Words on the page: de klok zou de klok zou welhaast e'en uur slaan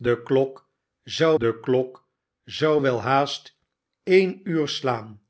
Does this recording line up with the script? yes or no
yes